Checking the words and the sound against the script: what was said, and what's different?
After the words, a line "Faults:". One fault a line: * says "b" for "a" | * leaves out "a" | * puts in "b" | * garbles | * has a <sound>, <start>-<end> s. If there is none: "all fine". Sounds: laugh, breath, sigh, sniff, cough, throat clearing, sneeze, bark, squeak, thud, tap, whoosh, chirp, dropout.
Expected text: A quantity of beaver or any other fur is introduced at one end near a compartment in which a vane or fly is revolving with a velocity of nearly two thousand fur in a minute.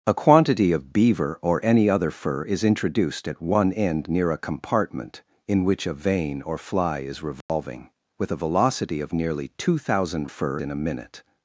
A quantity of beaver or any other fur is introduced at one end near a compartment in which a vane or fly is revolving with a velocity of nearly two thousand fur in a minute.
Faults:
* has a dropout, 7.4-7.5 s